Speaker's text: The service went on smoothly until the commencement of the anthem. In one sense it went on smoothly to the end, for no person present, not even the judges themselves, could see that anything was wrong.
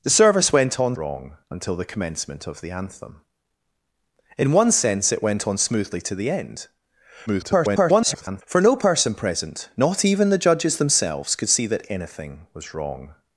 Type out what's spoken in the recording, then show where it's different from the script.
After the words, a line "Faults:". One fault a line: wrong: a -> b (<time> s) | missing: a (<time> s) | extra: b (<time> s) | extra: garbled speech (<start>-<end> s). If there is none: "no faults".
The service went on wrong until the commencement of the anthem. In one sense it went on smoothly to the end, [garbled] for no person present, not even the judges themselves, could see that anything was wrong.
Faults:
wrong: smoothly -> wrong (1.0 s)
extra: garbled speech (7.3-8.4 s)